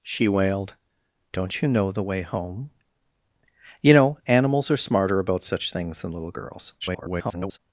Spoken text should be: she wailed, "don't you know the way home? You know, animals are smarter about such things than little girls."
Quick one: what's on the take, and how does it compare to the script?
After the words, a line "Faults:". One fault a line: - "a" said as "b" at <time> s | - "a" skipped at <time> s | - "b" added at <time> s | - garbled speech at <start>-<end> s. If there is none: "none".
she wailed, "don't you know the way home? You know, animals are smarter about such things than little girls." [garbled]
Faults:
- garbled speech at 6.8-7.6 s